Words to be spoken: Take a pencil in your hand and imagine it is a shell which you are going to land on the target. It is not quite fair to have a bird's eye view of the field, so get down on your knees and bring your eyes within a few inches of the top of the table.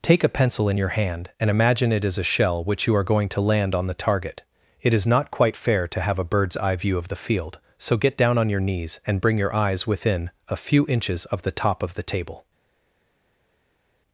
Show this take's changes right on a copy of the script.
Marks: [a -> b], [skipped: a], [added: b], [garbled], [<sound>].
Take a pencil in your hand and imagine it is a shell which you are going to land on the target. It is not quite fair to have a bird's eye view of the field, so get down on your knees and bring your eyes within a few inches of the top of the table.